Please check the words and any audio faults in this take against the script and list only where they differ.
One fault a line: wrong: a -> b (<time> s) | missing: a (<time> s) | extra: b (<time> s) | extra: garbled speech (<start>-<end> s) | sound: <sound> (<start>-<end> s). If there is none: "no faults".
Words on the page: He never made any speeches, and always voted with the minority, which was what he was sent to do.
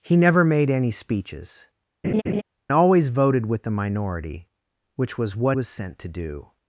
missing: and (1.7 s)
sound: laugh (2.0-2.4 s)
missing: he (5.6 s)